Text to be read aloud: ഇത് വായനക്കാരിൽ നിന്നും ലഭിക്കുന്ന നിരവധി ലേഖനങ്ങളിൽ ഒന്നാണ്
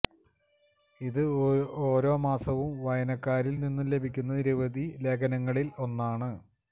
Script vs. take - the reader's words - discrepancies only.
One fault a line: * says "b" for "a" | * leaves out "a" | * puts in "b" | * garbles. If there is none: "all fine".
* puts in "ഓരോ മാസവും"